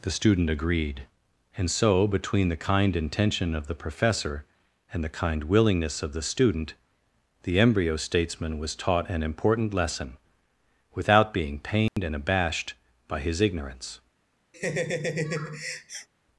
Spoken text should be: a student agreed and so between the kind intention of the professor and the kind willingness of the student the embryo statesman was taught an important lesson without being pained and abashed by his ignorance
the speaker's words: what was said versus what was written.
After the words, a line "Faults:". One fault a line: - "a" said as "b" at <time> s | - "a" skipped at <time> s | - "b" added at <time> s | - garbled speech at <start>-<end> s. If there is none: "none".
the student agreed and so between the kind intention of the professor and the kind willingness of the student the embryo statesman was taught an important lesson without being pained and abashed by his ignorance
Faults:
- "a" said as "the" at 0.0 s